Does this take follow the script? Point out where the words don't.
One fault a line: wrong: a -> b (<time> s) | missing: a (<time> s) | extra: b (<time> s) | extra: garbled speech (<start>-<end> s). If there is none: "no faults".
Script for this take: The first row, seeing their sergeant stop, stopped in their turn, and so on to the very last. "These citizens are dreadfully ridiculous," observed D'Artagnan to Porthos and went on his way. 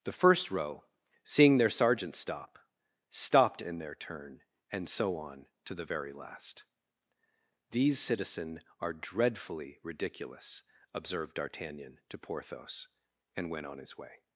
wrong: citizens -> citizen (8.0 s)